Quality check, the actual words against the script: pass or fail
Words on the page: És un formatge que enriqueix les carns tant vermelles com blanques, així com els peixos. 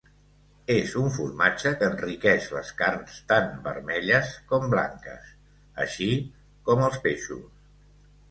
pass